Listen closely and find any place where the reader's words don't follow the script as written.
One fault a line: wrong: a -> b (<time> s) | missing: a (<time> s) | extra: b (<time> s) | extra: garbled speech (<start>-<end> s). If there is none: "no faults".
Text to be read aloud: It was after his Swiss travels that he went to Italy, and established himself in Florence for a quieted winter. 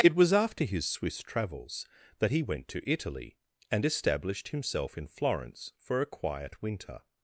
wrong: quieted -> quiet (6.1 s)